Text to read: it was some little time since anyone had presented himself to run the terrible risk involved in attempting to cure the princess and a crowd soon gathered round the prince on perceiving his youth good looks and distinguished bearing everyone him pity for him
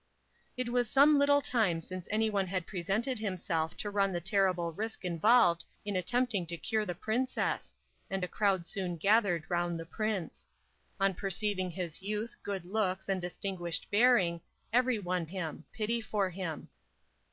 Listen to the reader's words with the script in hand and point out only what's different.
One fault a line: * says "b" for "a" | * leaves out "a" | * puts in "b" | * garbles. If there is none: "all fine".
all fine